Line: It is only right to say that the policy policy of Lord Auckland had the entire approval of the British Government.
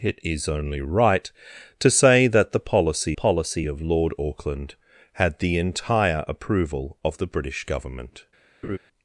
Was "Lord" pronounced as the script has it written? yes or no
yes